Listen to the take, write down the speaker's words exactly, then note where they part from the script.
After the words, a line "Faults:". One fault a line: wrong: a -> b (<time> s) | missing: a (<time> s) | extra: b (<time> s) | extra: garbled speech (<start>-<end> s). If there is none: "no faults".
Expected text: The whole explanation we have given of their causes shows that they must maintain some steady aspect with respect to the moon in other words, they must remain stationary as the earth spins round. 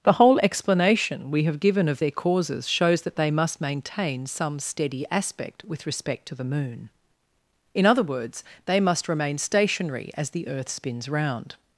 The whole explanation we have given of their causes shows that they must maintain some steady aspect with respect to the moon in other words, they must remain stationary as the earth spins round.
Faults:
no faults